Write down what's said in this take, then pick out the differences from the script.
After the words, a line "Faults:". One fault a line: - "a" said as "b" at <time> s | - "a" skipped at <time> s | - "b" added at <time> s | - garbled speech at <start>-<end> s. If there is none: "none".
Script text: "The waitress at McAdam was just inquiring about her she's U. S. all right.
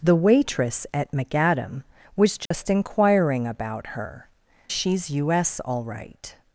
"The waitress at McAdam was just inquiring about her she's U. S. all right.
Faults:
none